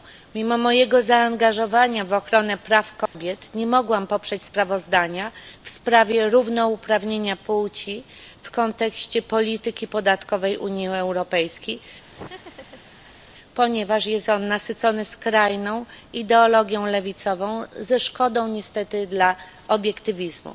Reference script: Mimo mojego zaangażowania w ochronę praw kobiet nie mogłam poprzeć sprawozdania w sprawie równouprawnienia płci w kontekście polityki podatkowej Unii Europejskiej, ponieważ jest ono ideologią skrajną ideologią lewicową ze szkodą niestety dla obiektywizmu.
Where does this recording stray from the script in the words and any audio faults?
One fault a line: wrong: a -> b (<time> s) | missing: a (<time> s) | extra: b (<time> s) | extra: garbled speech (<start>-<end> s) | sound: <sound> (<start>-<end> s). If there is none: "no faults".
sound: dropout (3.1-3.1 s)
sound: laugh (12.1-13.2 s)
wrong: ideologią -> nasycone (14.5 s)